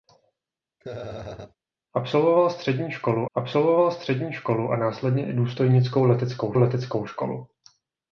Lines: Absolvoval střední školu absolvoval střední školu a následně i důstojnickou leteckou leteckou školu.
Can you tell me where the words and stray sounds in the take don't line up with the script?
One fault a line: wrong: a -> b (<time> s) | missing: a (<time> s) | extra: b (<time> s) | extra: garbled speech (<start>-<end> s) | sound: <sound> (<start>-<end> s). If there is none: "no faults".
sound: laugh (0.8-1.5 s)